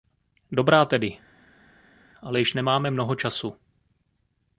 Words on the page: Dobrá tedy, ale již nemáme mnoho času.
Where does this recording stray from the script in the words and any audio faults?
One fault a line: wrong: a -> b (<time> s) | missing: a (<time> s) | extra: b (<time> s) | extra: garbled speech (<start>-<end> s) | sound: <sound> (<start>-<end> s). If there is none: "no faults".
no faults